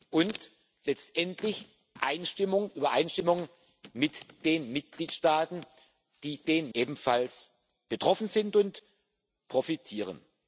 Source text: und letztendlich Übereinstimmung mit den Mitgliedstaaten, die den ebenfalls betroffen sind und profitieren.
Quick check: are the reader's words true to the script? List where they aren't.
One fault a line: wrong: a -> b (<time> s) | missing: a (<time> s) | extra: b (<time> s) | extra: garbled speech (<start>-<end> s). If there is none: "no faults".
no faults